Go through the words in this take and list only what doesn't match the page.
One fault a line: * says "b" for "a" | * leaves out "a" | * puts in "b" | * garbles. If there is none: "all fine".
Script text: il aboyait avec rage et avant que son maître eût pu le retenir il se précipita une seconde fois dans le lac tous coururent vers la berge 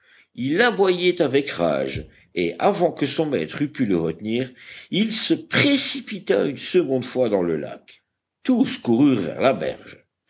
all fine